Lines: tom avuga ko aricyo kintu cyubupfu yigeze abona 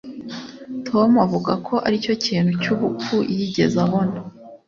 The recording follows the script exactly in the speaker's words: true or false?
true